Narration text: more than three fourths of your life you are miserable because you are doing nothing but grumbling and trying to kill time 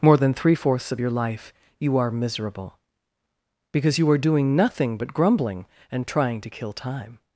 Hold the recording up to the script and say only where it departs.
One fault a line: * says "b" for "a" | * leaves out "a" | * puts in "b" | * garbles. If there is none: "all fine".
all fine